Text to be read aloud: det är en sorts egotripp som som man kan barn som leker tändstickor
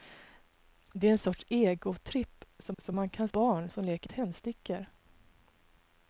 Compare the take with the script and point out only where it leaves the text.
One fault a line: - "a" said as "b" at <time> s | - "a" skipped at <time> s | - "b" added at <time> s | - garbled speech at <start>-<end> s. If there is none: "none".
none